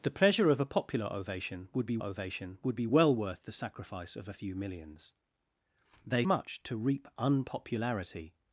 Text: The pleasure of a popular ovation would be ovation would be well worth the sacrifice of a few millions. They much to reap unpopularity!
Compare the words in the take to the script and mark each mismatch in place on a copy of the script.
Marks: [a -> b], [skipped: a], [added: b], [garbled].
The pleasure of a popular ovation would be ovation would be well worth the sacrifice of a few millions. They much to reap unpopularity!